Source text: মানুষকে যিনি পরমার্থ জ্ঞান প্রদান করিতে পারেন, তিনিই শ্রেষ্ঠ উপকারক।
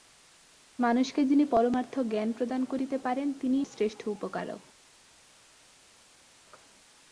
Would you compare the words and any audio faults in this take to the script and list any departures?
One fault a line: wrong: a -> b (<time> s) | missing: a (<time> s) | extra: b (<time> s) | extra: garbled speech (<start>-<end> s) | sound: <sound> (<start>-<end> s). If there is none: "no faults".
no faults